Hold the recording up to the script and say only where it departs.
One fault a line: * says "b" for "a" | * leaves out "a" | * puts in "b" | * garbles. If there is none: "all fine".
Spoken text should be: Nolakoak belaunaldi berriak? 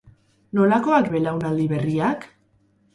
all fine